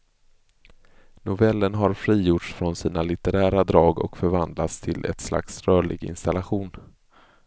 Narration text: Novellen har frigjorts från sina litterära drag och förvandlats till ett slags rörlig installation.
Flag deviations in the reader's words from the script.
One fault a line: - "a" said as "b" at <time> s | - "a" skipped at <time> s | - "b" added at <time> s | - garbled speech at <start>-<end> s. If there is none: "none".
none